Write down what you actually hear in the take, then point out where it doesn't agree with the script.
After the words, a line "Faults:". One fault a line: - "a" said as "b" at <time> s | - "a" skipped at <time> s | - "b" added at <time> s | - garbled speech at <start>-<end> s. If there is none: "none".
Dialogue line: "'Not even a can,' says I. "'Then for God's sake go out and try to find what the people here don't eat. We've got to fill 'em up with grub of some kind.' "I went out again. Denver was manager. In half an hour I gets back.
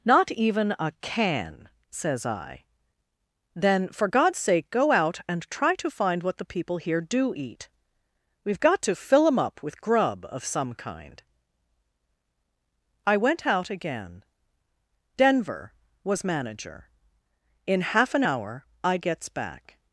"'Not even a can,' says I. "'Then for God's sake go out and try to find what the people here do eat. We've got to fill 'em up with grub of some kind.' "I went out again. Denver was manager. In half an hour I gets back.
Faults:
- "don't" said as "do" at 7.0 s